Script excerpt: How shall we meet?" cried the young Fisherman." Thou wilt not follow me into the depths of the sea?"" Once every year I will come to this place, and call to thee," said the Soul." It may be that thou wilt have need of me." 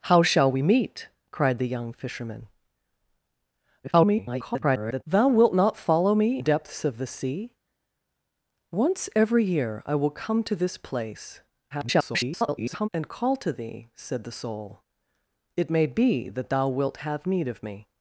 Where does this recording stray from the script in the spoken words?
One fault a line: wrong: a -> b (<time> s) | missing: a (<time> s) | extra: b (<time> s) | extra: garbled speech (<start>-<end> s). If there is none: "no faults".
extra: garbled speech (3.8-5.0 s)
missing: into the (6.4 s)
extra: garbled speech (11.7-12.9 s)